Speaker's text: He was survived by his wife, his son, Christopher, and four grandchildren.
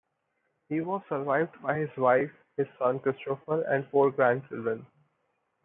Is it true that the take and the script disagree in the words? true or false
false